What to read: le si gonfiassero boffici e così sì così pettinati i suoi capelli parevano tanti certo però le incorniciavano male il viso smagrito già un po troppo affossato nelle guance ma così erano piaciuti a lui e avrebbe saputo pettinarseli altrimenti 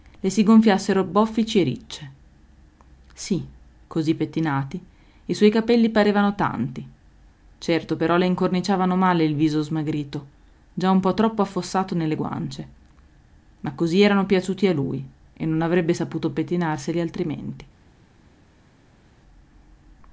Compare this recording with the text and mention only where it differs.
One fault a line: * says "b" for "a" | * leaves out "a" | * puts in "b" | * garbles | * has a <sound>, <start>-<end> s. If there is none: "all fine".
* says "ricce" for "così"
* puts in "non"